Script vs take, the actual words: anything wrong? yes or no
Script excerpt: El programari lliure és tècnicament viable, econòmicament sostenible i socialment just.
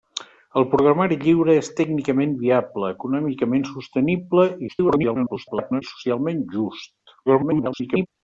yes